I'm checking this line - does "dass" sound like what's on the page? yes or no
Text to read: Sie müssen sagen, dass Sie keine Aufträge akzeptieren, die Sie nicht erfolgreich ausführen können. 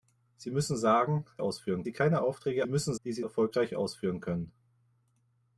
no